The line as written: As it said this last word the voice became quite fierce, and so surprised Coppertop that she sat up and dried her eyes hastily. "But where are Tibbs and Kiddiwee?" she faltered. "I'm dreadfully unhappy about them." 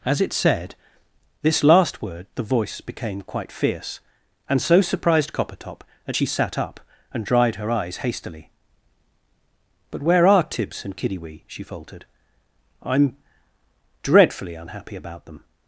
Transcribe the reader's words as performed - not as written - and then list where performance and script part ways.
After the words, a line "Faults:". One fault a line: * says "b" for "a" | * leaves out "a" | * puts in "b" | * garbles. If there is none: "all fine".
As it said this last word the voice became quite fierce, and so surprised Coppertop that she sat up and dried her eyes hastily. "But where are Tibbs and Kiddiwee?" she faltered. "I'm dreadfully unhappy about them."
Faults:
all fine